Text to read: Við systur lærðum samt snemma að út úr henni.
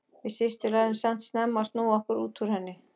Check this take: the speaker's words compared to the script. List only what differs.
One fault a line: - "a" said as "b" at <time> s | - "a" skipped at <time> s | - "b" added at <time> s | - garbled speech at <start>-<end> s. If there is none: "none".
- "snúa okkur" added at 1.7 s